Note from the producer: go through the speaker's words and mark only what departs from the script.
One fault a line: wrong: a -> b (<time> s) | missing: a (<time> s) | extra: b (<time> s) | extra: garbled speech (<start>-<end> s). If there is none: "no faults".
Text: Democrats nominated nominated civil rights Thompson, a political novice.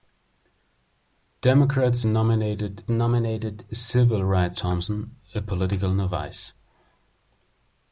no faults